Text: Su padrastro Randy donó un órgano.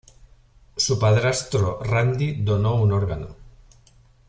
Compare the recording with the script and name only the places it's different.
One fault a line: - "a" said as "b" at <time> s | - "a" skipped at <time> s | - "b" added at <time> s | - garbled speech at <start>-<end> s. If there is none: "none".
none